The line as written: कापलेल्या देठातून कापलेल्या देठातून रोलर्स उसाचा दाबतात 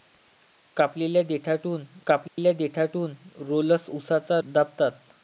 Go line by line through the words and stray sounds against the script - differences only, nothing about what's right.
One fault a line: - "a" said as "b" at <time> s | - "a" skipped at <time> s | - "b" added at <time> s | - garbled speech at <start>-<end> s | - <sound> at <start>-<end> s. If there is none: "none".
- dropout at 2.3-2.4 s